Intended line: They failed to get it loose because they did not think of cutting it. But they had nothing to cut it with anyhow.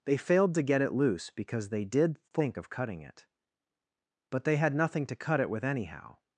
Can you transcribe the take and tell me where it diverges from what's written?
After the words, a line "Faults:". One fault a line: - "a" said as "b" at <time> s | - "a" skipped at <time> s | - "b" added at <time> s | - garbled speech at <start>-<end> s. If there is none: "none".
They failed to get it loose because they did think of cutting it. But they had nothing to cut it with anyhow.
Faults:
- "not" skipped at 2.2 s